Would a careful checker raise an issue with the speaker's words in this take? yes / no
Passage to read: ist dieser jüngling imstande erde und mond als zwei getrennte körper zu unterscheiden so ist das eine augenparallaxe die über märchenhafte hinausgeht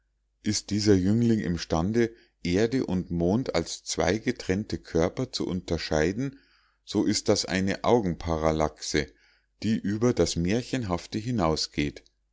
yes